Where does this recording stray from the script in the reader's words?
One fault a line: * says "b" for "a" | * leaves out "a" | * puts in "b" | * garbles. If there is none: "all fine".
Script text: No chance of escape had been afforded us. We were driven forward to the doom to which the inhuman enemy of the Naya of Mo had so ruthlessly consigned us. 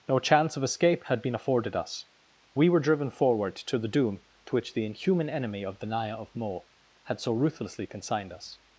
all fine